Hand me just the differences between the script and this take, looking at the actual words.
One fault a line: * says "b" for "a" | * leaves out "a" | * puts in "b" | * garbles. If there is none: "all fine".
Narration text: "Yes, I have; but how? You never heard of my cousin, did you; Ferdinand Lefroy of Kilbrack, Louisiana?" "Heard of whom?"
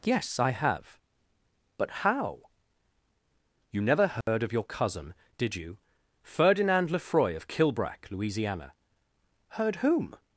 * says "your" for "my"
* leaves out "of"